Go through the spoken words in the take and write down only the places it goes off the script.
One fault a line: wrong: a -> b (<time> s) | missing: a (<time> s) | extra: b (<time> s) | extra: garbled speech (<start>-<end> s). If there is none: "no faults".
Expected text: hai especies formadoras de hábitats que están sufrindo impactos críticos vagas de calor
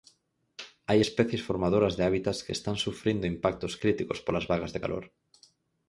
extra: polas (4.3 s)